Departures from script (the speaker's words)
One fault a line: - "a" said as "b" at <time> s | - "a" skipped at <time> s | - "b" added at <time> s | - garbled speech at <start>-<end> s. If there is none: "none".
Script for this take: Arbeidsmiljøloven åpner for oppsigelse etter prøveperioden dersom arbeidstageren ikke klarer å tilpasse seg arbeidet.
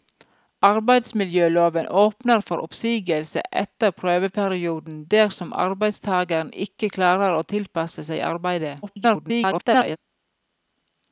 - garbled speech at 8.8-10.0 s